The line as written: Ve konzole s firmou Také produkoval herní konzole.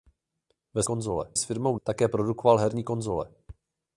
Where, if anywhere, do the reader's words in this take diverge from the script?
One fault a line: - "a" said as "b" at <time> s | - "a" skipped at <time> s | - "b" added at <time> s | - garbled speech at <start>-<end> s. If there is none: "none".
none